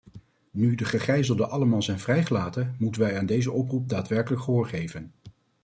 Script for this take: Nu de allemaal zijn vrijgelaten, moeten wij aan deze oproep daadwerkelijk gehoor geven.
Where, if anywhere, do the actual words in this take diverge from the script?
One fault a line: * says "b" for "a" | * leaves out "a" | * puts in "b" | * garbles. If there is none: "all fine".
* puts in "gegijzelden"